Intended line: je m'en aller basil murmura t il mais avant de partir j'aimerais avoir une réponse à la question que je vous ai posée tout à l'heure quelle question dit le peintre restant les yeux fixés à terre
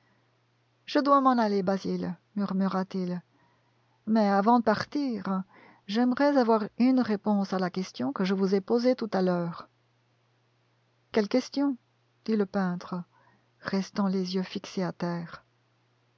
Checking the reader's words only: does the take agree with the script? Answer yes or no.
no